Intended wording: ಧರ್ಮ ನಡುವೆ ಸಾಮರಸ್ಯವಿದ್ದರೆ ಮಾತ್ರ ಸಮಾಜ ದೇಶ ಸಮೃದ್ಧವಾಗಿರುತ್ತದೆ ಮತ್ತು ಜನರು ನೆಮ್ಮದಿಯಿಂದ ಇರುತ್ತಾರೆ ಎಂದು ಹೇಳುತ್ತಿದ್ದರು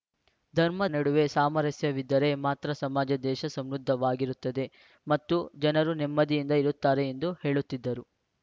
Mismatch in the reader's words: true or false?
false